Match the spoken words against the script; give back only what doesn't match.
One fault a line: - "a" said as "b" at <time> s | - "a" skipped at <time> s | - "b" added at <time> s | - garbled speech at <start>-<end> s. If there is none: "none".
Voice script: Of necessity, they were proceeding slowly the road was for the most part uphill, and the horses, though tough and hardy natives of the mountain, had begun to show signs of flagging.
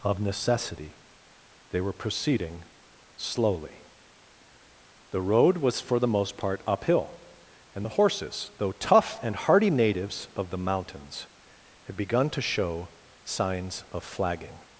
- "mountain" said as "mountains" at 10.6 s